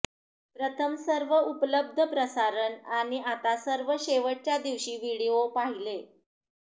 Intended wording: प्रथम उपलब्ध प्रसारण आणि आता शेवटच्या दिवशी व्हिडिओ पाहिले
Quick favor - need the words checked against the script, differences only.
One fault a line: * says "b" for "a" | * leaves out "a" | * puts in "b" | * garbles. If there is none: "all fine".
* puts in "सर्व"
* puts in "सर्व"